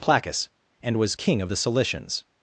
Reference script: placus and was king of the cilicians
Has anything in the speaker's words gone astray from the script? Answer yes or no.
no